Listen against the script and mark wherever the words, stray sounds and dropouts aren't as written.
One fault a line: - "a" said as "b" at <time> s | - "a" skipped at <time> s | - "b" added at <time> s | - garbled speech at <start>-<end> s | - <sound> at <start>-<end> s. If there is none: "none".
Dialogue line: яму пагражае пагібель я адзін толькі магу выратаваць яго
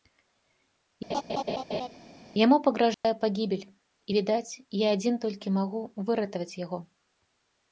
- laugh at 1.1-1.9 s
- dropout at 2.9-3.0 s
- "і відаць" added at 3.7 s